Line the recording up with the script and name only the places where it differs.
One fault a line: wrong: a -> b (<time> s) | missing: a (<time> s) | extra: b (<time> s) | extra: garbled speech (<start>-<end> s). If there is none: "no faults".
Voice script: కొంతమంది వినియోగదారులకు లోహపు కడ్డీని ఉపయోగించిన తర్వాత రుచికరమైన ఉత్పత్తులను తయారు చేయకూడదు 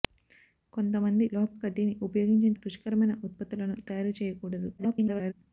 missing: వినియోగదారులకు (1.2 s)
missing: తర్వాత (2.5 s)
extra: garbled speech (4.8-5.3 s)